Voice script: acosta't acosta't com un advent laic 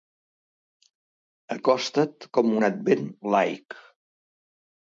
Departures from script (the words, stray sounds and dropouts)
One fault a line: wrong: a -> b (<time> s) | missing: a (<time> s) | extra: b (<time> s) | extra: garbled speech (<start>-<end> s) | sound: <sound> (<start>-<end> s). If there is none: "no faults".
missing: acosta't (2.3 s)